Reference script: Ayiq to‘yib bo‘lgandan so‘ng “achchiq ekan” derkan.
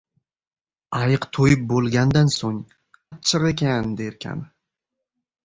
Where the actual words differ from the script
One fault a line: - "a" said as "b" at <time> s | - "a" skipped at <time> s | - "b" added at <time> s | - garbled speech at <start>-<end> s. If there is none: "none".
none